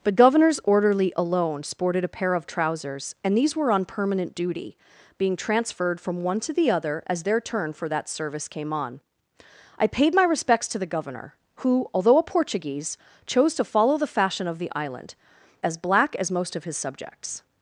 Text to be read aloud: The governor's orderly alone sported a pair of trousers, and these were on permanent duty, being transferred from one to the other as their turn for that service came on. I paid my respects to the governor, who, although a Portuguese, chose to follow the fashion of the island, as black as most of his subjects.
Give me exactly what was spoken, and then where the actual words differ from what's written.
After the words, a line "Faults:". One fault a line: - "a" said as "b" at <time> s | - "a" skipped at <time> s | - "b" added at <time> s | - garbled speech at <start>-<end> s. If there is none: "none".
The governor's orderly alone sported a pair of trousers, and these were on permanent duty, being transferred from one to the other as their turn for that service came on. I paid my respects to the governor, who, although a Portuguese, chose to follow the fashion of the island, as black as most of his subjects.
Faults:
none